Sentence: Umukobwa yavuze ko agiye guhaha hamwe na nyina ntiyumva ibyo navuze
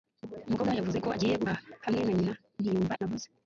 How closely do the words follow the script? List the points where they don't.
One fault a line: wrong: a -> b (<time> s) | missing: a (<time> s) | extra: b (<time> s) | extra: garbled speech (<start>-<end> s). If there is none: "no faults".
missing: ibyo (2.9 s)